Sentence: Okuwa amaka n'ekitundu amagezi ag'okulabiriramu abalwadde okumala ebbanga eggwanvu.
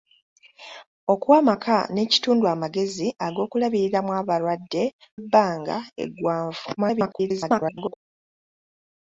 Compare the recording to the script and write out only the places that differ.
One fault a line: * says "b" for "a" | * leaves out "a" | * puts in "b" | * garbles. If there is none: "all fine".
* leaves out "okumala"
* garbles